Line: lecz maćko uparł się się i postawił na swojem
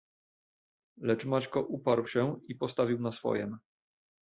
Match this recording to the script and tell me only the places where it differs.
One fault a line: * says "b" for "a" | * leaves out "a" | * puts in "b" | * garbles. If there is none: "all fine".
* leaves out "się"